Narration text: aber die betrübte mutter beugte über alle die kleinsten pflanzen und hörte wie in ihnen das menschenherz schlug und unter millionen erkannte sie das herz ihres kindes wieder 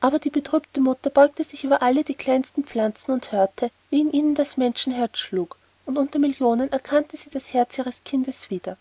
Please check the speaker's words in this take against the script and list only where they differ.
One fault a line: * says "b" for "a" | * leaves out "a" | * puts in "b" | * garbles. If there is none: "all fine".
* puts in "sich"